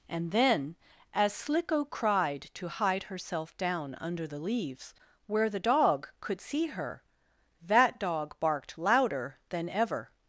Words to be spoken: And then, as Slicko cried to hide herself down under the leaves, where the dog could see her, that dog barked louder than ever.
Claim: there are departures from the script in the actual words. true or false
false